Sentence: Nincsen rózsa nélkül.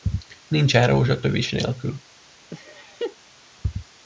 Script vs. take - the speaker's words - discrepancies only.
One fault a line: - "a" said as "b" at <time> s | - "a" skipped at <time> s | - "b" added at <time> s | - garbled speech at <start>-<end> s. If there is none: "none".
- "tövis" added at 1.2 s